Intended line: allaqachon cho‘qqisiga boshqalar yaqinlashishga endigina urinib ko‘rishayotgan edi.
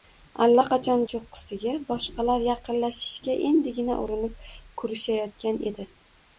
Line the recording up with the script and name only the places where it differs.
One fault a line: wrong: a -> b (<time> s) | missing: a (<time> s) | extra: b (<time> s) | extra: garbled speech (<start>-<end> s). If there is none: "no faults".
no faults